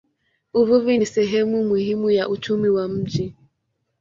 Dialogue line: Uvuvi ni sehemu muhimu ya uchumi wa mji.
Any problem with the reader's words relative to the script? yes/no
no